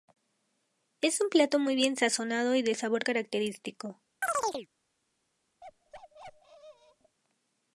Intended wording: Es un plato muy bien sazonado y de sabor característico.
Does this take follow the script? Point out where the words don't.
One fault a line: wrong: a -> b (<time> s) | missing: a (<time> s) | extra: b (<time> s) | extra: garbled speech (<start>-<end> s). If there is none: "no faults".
no faults